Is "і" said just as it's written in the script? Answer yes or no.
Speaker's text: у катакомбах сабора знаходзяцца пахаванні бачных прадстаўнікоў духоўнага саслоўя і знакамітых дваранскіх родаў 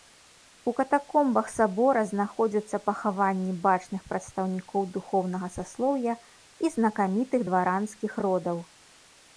yes